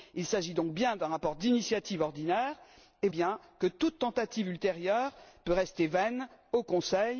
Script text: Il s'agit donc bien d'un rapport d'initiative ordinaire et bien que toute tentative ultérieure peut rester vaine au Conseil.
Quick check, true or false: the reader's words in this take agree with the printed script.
true